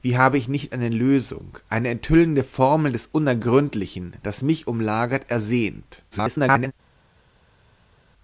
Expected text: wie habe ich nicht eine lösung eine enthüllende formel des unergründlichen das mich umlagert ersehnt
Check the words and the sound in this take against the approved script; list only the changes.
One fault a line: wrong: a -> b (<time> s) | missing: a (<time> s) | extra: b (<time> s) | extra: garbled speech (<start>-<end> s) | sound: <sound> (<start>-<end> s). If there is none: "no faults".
extra: garbled speech (6.1-6.7 s)